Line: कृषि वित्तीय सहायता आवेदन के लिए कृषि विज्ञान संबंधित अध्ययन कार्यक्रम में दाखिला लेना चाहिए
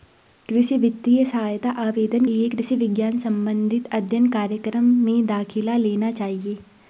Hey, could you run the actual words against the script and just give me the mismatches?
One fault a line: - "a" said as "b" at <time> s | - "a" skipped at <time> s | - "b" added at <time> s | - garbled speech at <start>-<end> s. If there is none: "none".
- "के" skipped at 2.2 s